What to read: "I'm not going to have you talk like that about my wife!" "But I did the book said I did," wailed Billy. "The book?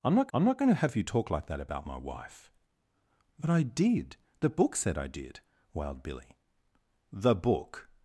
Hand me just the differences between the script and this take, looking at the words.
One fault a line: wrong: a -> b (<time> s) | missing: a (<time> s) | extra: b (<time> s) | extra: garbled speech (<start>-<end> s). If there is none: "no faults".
extra: I'm not (0.3 s)